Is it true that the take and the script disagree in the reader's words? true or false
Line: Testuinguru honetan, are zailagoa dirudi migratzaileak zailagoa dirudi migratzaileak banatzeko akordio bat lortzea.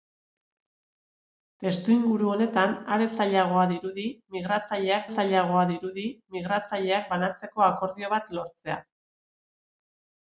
false